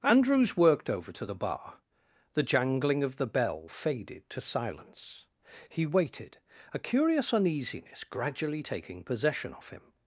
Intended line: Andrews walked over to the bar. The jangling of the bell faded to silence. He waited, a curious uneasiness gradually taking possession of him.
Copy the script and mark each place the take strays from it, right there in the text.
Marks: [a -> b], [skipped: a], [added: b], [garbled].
Andrews [walked -> worked] over to the bar. The jangling of the bell faded to silence. He waited, a curious uneasiness gradually taking possession of him.